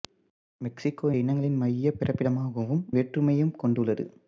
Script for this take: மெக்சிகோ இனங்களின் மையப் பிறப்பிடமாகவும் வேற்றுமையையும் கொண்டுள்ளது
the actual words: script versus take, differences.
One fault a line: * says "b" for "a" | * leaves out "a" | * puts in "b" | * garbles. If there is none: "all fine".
all fine